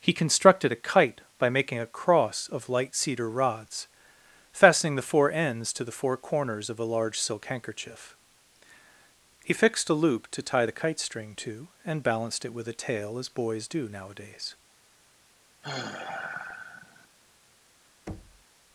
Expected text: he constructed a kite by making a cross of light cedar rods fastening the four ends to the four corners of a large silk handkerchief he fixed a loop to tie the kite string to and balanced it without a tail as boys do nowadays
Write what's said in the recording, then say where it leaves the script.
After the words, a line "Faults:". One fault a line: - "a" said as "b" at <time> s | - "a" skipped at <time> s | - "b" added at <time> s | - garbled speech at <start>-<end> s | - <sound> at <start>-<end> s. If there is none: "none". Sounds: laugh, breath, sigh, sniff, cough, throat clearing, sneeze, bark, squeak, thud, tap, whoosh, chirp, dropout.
he constructed a kite by making a cross of light cedar rods fastening the four ends to the four corners of a large silk handkerchief he fixed a loop to tie the kite string to and balanced it with a tail as boys do nowadays
Faults:
- "without" said as "with" at 12.5 s
- sigh at 15.6-17.1 s
- thud at 18.1-18.4 s